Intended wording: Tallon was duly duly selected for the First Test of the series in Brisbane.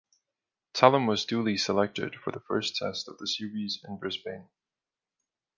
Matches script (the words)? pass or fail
fail